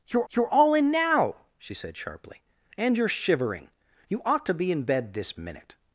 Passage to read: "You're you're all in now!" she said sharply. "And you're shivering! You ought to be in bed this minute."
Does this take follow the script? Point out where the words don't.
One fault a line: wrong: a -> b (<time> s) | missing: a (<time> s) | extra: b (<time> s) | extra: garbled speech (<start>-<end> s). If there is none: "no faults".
no faults